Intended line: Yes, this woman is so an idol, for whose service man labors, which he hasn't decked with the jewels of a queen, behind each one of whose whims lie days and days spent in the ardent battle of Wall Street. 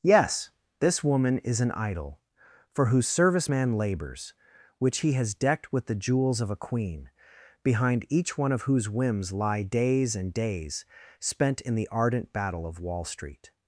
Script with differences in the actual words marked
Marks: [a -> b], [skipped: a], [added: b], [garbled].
Yes, this woman is [skipped: so] an idol, for whose service man labors, which he [hasn't -> has] decked with the jewels of a queen, behind each one of whose whims lie days and days spent in the ardent battle of Wall Street.